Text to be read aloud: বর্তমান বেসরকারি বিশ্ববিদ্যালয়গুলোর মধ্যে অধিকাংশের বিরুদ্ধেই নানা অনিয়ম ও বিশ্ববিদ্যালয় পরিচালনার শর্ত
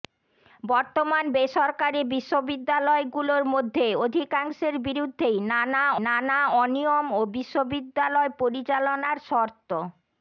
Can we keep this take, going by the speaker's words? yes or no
no